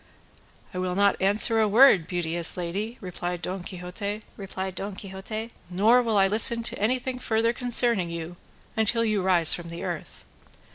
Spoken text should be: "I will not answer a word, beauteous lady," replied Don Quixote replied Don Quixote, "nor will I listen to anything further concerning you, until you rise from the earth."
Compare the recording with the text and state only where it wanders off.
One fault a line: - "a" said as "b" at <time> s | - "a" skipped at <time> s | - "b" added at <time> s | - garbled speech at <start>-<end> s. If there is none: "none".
none